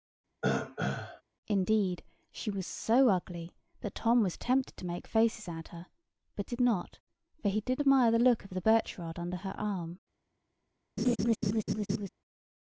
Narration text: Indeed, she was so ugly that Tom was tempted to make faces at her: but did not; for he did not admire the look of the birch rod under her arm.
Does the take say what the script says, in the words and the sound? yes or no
no